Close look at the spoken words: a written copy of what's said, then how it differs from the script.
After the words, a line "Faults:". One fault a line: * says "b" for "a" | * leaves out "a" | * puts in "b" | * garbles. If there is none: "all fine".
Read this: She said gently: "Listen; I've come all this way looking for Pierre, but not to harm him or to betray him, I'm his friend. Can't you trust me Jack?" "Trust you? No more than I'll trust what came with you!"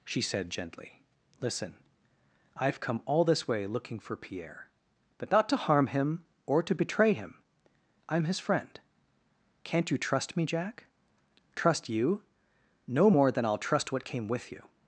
She said gently: "Listen; I've come all this way looking for Pierre, but not to harm him or to betray him, I'm his friend. Can't you trust me Jack?" "Trust you? No more than I'll trust what came with you!"
Faults:
all fine